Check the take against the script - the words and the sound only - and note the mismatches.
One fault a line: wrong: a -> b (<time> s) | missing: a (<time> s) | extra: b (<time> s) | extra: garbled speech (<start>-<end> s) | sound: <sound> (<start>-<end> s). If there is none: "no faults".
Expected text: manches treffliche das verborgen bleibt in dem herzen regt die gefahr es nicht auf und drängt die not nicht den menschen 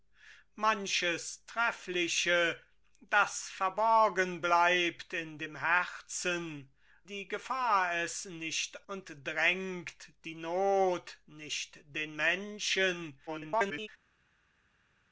missing: regt (6.7 s)
missing: auf (8.9 s)
extra: garbled speech (13.3-13.9 s)